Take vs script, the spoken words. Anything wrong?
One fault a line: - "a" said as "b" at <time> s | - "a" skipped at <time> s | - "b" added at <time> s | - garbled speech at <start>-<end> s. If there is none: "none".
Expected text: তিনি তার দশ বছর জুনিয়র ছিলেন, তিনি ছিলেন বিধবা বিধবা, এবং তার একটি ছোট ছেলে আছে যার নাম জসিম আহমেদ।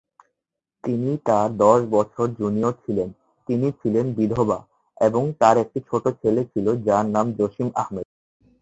- "বিধবা" skipped at 4.6 s
- "আছে" said as "ছিল" at 6.5 s